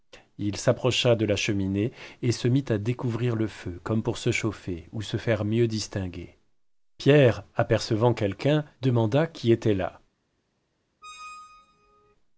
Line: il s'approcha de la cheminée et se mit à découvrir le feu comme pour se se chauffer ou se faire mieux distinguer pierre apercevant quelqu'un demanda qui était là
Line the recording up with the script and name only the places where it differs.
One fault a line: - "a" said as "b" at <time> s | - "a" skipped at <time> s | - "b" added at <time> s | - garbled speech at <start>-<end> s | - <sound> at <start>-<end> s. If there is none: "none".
- "se" skipped at 4.3 s
- squeak at 11.0-12.2 s